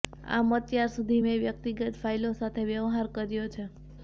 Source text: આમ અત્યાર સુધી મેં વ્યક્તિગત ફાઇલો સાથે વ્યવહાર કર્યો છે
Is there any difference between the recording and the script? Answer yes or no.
no